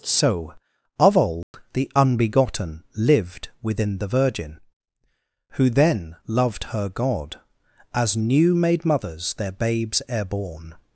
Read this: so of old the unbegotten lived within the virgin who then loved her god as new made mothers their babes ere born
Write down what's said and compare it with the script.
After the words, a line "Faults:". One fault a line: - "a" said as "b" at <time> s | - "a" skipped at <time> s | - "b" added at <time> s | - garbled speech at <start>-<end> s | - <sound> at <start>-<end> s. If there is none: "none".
so of old the unbegotten lived within the virgin who then loved her god as new made mothers their babes ere born
Faults:
- dropout at 1.4-1.5 s